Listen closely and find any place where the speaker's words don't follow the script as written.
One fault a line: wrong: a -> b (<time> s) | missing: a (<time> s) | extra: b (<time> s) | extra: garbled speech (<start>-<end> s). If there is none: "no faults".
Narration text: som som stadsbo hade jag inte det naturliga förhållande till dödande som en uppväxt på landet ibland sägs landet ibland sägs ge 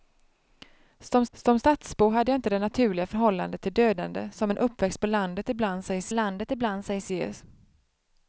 no faults